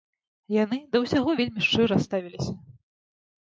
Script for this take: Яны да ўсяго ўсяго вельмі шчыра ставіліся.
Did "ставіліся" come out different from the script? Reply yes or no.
no